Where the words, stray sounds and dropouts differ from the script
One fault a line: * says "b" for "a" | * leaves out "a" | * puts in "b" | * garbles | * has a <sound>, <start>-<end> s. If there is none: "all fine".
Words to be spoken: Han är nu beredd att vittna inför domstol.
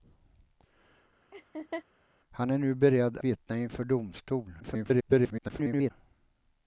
* has a laugh, 1.3-1.8 s
* leaves out "att"
* garbles